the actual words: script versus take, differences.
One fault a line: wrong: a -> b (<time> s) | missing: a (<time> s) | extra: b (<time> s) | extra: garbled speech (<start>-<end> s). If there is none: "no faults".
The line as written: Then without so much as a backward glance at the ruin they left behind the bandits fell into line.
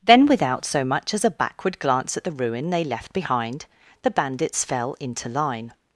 no faults